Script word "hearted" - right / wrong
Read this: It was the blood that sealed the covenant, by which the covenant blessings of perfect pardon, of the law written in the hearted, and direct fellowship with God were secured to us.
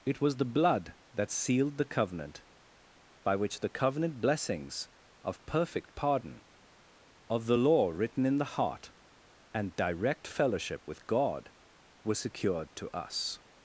wrong